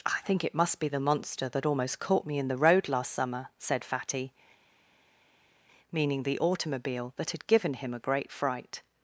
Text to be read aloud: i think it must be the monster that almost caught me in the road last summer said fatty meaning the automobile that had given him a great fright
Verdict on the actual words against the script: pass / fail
pass